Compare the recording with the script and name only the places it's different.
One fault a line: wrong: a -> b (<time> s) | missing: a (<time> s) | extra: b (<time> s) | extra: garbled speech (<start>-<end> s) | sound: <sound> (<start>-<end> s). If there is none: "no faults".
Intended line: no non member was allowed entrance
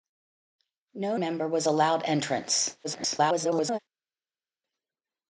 missing: non (1.2 s)
extra: garbled speech (2.8-3.8 s)